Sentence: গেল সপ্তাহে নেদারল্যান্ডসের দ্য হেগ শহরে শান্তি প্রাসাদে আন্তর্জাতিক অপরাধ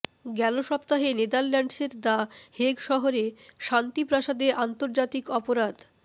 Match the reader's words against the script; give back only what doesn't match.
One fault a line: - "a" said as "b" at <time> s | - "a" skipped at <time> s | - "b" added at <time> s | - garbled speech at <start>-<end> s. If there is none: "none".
none